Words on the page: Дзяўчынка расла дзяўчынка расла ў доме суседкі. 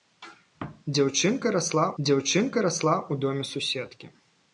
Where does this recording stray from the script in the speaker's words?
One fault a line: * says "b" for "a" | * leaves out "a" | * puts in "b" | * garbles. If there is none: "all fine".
all fine